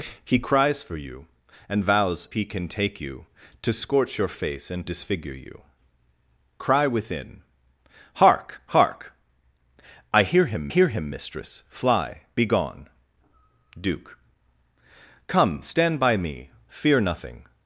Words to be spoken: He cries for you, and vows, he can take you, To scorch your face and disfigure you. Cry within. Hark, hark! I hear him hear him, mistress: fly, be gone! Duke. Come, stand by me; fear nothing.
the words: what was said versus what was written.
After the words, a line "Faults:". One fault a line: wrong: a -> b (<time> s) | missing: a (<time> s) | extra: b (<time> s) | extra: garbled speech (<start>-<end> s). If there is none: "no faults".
He cries for you, and vows, he can take you, To scorch your face and disfigure you. Cry within. Hark, hark! I hear him hear him, mistress: fly, be gone! Duke. Come, stand by me; fear nothing.
Faults:
no faults